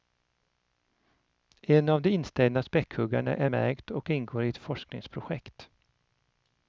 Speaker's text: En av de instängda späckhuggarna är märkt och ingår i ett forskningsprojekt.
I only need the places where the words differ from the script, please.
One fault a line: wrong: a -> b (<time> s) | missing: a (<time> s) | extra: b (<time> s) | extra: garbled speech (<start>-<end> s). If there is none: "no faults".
no faults